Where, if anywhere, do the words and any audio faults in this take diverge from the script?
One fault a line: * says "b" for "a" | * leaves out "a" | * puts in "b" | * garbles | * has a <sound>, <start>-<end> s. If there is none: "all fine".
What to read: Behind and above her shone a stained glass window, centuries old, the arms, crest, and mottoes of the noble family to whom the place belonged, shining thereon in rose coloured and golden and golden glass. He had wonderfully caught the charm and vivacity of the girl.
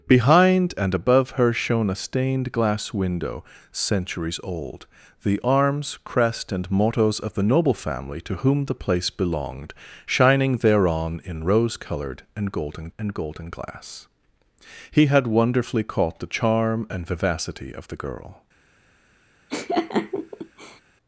* has a laugh, 19.5-20.8 s